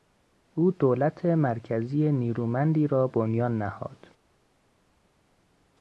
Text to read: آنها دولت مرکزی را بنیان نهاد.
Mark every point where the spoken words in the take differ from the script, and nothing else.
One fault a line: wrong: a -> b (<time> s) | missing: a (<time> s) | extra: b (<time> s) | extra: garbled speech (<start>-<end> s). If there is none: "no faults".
wrong: آنها -> او (0.6 s)
extra: نیرومندی (2.1 s)